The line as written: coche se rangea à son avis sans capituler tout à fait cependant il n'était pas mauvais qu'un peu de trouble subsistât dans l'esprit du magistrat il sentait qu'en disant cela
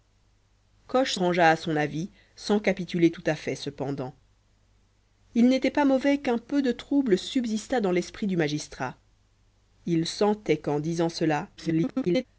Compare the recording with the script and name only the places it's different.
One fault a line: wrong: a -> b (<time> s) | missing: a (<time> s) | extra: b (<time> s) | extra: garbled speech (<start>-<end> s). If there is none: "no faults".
missing: se (1.1 s)
extra: garbled speech (11.6-12.3 s)